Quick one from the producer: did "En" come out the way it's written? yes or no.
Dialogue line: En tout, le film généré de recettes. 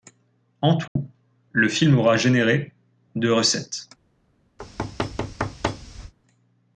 yes